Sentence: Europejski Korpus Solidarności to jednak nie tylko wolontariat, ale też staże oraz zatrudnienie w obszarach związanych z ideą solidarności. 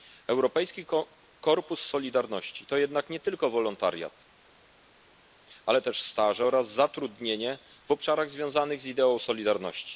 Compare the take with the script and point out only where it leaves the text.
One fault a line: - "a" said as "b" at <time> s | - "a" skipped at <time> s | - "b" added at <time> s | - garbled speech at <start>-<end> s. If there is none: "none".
none